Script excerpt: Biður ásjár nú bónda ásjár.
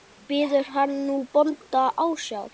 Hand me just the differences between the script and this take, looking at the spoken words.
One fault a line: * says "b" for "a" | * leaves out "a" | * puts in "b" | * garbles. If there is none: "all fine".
* says "hann" for "ásjár"